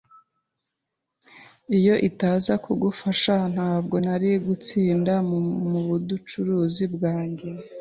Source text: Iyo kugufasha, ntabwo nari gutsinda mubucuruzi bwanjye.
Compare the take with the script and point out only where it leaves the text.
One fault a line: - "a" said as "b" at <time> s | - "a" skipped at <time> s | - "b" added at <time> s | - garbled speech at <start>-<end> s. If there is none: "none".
- "itaza" added at 2.1 s